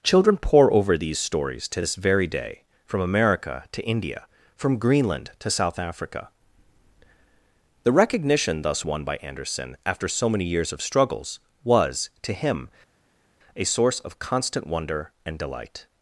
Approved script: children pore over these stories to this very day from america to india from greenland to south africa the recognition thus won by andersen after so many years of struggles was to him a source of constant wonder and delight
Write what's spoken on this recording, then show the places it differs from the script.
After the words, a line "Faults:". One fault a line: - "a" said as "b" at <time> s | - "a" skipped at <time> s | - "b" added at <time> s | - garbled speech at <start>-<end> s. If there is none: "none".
children pore over these stories to this very day from america to india from greenland to south africa the recognition thus won by andersen after so many years of struggles was to him a source of constant wonder and delight
Faults:
none